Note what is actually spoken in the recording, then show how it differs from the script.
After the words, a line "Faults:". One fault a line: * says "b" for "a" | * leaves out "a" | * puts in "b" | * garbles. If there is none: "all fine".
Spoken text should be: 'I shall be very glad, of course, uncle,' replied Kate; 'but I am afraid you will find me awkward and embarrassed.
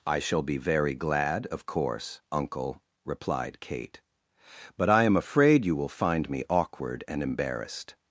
'I shall be very glad, of course, uncle,' replied Kate; 'but I am afraid you will find me awkward and embarrassed.
Faults:
all fine